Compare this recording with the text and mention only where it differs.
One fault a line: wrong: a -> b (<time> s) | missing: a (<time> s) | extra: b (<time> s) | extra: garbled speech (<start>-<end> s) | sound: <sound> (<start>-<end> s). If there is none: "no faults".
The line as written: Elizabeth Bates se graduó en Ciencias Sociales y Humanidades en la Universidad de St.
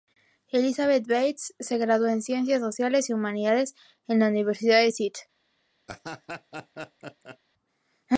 sound: laugh (5.9-7.4 s)